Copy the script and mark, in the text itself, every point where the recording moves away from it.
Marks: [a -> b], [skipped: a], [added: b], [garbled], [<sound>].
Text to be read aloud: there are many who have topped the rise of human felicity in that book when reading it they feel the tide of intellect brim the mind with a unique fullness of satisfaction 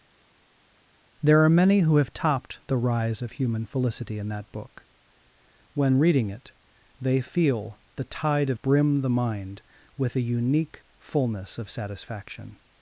there are many who have topped the rise of human felicity in that book when reading it they feel the tide of [skipped: intellect] brim the mind with a unique fullness of satisfaction